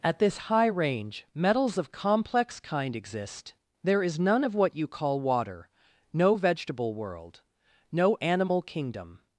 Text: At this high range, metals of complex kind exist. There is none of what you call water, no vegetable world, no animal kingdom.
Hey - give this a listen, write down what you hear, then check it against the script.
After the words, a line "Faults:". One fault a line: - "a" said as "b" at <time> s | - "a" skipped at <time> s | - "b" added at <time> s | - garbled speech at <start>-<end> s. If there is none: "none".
At this high range, metals of complex kind exist. There is none of what you call water, no vegetable world, no animal kingdom.
Faults:
none